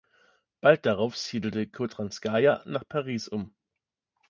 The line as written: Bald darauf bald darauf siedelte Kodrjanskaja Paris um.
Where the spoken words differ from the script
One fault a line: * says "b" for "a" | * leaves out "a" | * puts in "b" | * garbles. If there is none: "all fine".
* leaves out "bald darauf"
* puts in "nach"